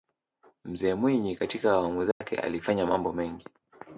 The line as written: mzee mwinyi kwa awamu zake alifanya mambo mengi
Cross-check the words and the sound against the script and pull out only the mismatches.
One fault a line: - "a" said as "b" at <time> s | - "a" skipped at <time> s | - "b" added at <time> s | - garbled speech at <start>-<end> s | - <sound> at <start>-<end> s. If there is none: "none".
- "kwa" said as "katika" at 1.3 s
- dropout at 2.1-2.2 s